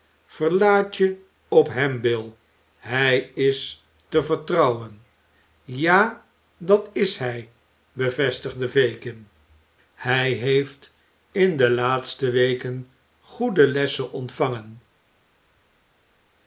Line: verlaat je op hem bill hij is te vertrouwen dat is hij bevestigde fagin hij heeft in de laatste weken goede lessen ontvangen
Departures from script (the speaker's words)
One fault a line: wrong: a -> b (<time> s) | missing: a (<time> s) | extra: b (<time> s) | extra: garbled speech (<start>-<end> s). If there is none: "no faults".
extra: ja (5.6 s)